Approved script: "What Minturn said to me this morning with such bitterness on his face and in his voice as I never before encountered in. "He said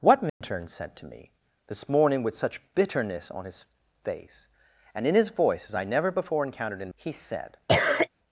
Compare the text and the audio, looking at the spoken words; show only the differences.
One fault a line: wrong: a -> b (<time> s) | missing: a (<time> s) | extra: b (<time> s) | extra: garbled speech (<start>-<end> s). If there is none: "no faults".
no faults